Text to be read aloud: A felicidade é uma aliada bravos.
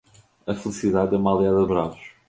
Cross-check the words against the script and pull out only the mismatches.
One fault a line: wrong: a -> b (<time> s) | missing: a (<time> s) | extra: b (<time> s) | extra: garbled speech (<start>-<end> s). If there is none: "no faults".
no faults